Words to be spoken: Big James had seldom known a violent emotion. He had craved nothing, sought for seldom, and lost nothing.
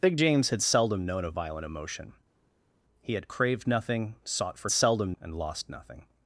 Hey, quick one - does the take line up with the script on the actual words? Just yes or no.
yes